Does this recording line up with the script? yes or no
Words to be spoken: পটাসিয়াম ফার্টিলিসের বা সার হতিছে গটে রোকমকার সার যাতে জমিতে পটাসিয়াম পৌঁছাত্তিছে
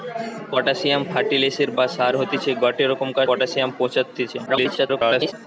no